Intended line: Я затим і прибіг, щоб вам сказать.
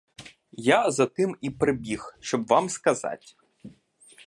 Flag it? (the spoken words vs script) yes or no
no